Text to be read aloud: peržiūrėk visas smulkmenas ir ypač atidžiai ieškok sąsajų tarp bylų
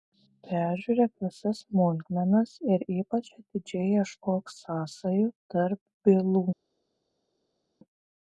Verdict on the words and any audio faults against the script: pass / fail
pass